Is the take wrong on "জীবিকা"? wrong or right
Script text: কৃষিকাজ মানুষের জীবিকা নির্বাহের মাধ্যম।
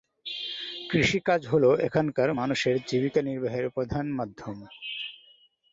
right